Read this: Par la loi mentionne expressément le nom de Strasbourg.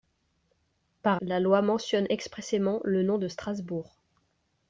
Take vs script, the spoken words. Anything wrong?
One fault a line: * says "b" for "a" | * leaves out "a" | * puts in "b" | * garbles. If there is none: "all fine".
all fine